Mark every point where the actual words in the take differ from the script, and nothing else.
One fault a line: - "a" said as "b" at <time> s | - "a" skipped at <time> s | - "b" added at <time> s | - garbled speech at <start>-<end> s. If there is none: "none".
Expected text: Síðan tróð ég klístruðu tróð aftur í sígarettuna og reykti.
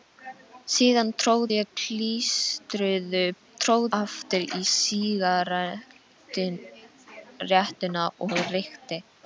none